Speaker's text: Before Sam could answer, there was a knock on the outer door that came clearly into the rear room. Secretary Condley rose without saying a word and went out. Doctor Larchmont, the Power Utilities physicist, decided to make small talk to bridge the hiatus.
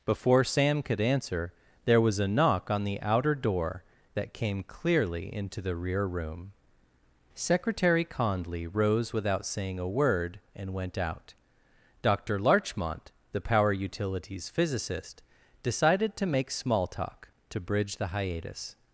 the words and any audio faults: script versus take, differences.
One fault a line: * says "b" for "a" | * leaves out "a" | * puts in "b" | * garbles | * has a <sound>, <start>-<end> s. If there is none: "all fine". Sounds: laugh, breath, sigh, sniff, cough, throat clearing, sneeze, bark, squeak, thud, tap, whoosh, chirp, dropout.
all fine